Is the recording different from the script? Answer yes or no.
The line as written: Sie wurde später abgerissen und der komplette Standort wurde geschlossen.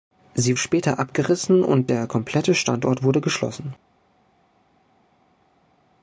yes